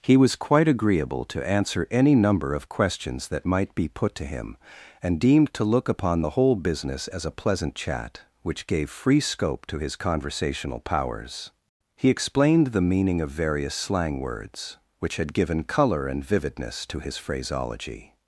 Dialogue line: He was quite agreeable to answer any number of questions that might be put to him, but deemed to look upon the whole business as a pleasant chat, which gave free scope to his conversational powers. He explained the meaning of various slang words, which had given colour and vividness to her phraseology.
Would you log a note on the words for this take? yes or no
yes